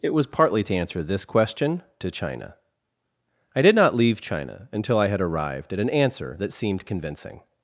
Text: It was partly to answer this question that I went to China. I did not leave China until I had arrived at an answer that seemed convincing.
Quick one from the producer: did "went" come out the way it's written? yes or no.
no